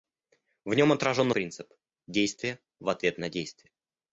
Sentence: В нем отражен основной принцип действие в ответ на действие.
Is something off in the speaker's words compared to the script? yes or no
yes